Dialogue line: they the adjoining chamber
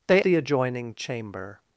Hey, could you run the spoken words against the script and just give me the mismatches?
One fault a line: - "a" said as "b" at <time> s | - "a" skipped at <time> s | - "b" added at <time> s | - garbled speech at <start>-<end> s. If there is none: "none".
none